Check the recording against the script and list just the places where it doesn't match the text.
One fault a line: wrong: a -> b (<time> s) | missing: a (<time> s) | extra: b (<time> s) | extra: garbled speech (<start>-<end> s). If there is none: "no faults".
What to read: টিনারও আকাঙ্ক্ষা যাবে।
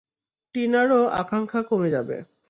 extra: কমে (1.7 s)